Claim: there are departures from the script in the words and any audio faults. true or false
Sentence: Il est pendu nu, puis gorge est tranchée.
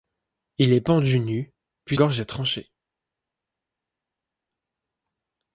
false